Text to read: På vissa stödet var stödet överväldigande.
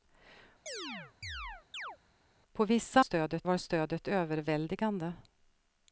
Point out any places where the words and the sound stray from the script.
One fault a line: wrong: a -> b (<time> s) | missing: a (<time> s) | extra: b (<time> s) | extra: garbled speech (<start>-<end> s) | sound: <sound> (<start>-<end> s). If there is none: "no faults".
sound: chirp (0.7-2.0 s)